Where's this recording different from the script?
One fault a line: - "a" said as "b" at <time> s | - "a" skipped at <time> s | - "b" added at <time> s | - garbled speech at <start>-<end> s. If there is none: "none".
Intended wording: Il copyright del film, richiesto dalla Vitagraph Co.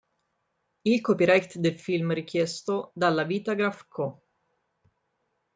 none